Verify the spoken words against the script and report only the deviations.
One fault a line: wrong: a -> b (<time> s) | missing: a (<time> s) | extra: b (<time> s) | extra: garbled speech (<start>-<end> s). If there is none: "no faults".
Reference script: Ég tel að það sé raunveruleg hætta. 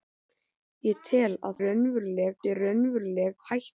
wrong: það -> raunveruleg (1.6 s)